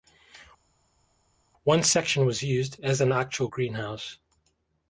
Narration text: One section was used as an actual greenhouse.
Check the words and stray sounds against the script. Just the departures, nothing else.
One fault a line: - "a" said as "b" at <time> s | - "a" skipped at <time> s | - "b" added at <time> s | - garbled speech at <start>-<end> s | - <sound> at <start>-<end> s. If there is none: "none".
none